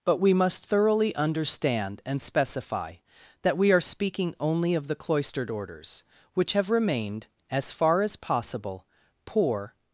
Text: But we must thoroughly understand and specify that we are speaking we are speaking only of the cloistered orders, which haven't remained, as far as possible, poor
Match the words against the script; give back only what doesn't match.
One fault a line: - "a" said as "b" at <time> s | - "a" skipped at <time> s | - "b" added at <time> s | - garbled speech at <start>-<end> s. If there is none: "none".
- "we are speaking" skipped at 4.4 s
- "haven't" said as "have" at 6.5 s